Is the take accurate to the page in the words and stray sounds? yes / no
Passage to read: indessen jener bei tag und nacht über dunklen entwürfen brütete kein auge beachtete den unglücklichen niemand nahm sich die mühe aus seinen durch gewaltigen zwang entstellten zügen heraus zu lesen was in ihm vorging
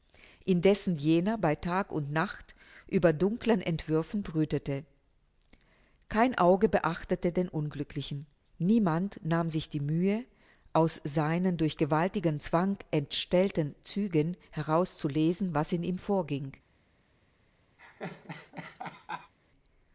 no